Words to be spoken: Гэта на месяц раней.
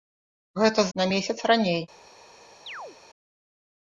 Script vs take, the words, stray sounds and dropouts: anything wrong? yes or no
yes